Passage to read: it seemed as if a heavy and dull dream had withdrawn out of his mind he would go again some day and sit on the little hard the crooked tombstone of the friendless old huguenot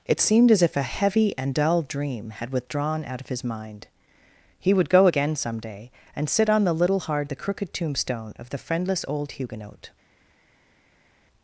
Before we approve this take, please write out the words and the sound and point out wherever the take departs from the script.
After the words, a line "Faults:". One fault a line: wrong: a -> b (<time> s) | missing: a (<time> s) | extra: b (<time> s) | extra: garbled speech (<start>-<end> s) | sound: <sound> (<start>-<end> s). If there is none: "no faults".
it seemed as if a heavy and dull dream had withdrawn out of his mind he would go again some day and sit on the little hard the crooked tombstone of the friendless old huguenot
Faults:
no faults